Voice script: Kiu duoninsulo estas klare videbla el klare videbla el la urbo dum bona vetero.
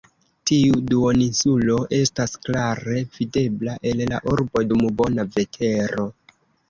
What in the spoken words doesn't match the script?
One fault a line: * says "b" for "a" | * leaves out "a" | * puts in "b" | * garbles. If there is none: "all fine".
* says "Tiu" for "Kiu"
* leaves out "klare videbla el"